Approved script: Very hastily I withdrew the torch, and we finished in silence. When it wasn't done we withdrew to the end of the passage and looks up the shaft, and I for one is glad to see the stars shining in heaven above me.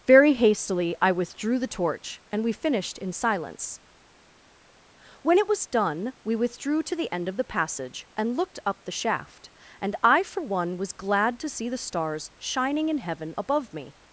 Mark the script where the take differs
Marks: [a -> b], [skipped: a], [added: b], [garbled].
Very hastily I withdrew the torch, and we finished in silence. When it [wasn't -> was] done we withdrew to the end of the passage and [looks -> looked] up the shaft, and I for one [is -> was] glad to see the stars shining in heaven above me.